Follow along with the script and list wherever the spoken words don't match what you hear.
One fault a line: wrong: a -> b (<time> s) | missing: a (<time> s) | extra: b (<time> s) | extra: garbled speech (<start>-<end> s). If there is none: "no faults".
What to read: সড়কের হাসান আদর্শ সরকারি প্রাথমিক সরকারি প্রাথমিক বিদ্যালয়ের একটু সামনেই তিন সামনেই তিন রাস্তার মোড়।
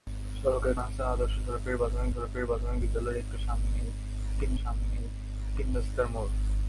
no faults